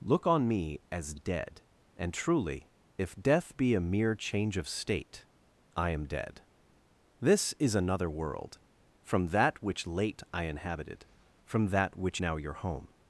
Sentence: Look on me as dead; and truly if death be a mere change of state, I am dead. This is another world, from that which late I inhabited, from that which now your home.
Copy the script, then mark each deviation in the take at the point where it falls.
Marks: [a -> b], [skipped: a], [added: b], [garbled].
Look on me as dead; and truly if death be a mere change of state, I am dead. This is another world, from that which late I inhabited, from that which now your home.